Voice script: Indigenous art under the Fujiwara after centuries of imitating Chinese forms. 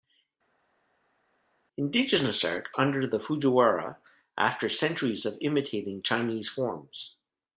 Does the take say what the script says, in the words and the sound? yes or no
yes